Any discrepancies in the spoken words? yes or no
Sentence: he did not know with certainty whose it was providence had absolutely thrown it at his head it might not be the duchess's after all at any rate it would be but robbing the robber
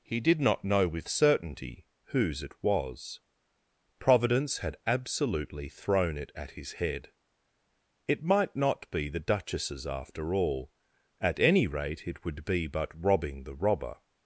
no